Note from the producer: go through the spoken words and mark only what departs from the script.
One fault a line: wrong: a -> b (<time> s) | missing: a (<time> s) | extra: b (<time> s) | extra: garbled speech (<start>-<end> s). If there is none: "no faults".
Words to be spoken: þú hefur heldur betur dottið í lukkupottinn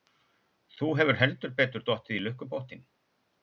no faults